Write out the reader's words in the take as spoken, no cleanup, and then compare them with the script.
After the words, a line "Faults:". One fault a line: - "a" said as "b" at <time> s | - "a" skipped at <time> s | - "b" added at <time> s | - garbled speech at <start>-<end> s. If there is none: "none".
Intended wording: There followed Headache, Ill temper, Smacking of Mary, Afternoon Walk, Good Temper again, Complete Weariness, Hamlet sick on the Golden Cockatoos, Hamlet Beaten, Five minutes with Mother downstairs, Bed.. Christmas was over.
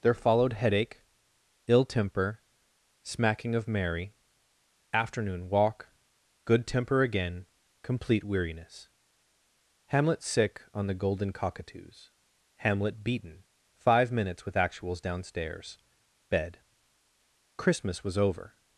There followed Headache, Ill temper, Smacking of Mary, Afternoon Walk, Good Temper again, Complete Weariness, Hamlet sick on the Golden Cockatoos, Hamlet Beaten, Five minutes with Actuals downstairs, Bed.. Christmas was over.
Faults:
- "Mother" said as "Actuals" at 14.6 s